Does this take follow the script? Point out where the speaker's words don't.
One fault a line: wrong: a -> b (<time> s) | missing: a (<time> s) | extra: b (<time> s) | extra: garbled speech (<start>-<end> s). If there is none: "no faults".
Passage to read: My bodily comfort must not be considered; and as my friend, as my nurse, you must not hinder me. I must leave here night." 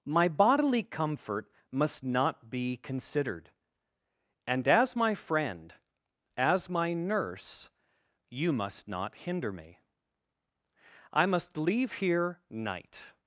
no faults